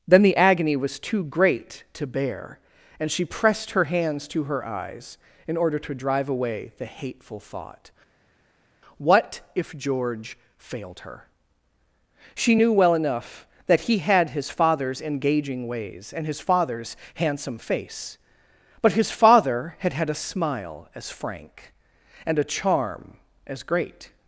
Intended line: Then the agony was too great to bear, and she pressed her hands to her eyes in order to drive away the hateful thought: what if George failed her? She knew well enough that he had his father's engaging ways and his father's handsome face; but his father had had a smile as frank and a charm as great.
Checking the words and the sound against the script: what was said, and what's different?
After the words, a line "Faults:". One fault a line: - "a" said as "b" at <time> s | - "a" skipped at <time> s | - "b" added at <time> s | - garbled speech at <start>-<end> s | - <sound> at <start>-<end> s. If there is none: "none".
Then the agony was too great to bear, and she pressed her hands to her eyes in order to drive away the hateful thought: what if George failed her? She knew well enough that he had his father's engaging ways and his father's handsome face; but his father had had a smile as frank and a charm as great.
Faults:
none